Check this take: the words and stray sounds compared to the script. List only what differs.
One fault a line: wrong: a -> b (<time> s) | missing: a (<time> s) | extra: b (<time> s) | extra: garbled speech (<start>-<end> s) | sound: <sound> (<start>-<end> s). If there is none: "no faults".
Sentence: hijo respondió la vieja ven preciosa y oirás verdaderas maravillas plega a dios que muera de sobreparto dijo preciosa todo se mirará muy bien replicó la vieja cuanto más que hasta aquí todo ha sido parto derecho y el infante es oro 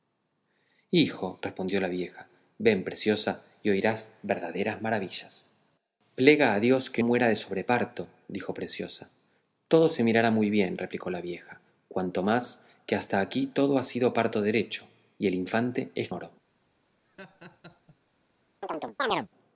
sound: laugh (17.0-18.0 s)
sound: chirp (18.6-19.3 s)